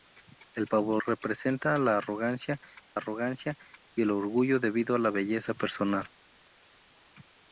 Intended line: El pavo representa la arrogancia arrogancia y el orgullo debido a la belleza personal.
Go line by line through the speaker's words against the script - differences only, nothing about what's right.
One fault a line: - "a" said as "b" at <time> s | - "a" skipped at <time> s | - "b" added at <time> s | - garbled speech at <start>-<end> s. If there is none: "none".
none